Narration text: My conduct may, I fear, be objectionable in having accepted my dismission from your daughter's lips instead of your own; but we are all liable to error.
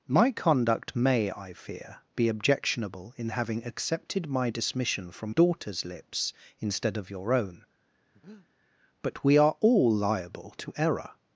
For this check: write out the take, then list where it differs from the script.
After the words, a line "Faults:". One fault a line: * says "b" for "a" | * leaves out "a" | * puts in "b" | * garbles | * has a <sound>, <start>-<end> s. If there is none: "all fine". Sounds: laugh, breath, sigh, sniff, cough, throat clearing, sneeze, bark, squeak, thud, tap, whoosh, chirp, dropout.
My conduct may, I fear, be objectionable in having accepted my dismission from daughter's lips instead of your own; but we are all liable to error.
Faults:
* leaves out "your"
* has a breath, 8.1-8.5 s